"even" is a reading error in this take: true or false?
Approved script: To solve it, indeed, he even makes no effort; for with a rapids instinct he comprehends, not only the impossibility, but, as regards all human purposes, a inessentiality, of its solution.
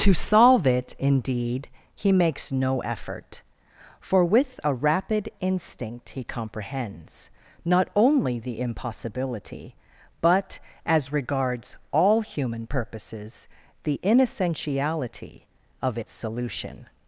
true